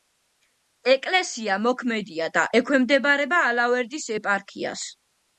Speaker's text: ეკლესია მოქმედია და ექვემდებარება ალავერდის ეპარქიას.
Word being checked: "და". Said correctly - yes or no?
yes